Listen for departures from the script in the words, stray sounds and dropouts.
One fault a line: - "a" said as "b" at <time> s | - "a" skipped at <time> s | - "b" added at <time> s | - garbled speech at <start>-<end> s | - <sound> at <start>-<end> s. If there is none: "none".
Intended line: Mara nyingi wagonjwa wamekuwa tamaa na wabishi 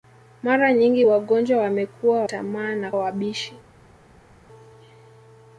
none